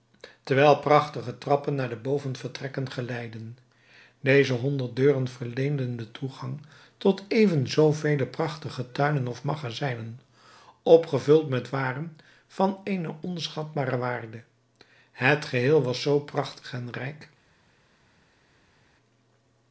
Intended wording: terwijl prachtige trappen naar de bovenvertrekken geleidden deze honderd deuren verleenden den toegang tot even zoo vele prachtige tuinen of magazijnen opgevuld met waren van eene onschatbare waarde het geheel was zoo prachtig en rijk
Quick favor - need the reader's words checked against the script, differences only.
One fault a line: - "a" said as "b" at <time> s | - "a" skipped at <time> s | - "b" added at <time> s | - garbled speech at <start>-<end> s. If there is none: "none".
none